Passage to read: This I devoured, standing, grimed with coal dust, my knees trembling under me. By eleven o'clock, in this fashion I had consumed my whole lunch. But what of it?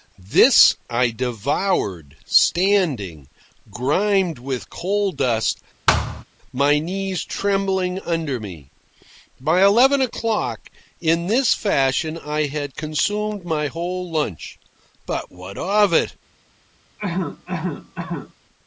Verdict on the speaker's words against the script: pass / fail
pass